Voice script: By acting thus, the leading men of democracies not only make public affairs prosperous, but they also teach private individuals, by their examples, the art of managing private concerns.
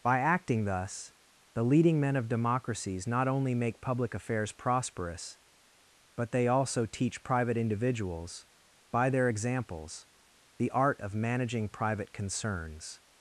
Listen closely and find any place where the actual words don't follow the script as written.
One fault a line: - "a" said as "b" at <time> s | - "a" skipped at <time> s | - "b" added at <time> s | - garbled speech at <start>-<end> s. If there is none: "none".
none